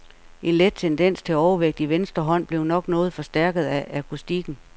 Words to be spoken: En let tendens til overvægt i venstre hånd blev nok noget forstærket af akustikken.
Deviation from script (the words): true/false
false